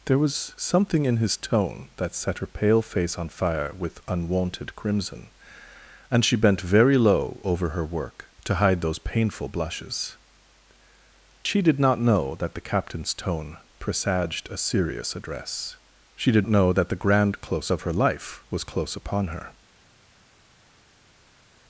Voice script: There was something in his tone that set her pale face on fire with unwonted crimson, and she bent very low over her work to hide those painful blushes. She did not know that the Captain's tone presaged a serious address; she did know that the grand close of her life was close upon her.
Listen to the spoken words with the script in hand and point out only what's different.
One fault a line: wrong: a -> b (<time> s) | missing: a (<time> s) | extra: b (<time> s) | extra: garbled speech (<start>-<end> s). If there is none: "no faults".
no faults